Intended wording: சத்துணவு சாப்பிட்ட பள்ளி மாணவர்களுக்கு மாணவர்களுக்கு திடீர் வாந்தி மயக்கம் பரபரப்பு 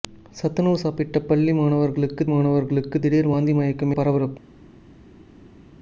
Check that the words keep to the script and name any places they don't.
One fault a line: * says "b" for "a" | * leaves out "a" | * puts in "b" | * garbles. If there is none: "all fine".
all fine